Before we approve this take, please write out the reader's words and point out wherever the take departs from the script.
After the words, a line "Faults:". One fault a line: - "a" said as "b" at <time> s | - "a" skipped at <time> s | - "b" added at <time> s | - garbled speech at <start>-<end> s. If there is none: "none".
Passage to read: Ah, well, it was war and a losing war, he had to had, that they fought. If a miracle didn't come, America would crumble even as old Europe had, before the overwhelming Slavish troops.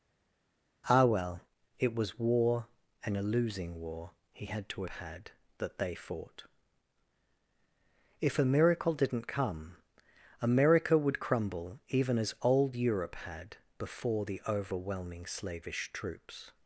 Ah, well, it was war and a losing war, he had to had, that they fought. If a miracle didn't come, America would crumble even as old Europe had, before the overwhelming Slavish troops.
Faults:
none